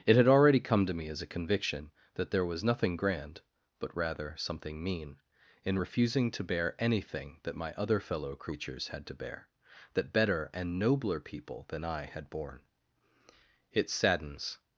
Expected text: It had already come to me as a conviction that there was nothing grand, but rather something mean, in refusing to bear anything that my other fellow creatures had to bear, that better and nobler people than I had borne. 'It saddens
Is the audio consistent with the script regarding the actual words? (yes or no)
yes